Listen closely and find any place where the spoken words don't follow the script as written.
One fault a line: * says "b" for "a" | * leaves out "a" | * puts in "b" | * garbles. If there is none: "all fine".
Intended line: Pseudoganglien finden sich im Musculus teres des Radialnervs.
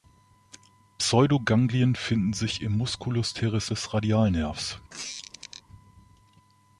all fine